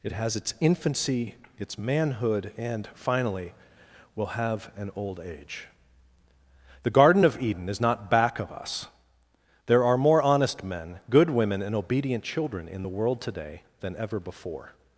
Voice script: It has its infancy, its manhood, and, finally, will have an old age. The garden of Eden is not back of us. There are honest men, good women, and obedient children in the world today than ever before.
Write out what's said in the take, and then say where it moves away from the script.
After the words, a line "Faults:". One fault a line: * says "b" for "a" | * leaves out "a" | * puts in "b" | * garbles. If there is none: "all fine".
It has its infancy, its manhood, and, finally, will have an old age. The garden of Eden is not back of us. There are more honest men, good women, and obedient children in the world today than ever before.
Faults:
* puts in "more"